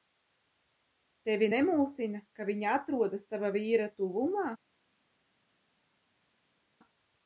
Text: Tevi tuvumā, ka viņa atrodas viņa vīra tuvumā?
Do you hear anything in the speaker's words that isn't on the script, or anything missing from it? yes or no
yes